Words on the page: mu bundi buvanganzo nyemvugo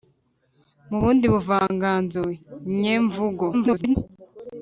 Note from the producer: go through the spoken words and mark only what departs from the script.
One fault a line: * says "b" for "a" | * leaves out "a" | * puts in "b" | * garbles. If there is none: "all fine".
* garbles